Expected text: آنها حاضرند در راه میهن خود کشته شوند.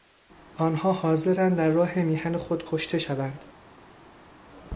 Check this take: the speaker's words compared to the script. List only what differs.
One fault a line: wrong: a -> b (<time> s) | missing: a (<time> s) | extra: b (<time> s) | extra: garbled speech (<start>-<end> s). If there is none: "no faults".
no faults